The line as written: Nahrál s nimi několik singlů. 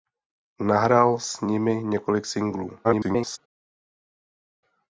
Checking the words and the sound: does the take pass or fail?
fail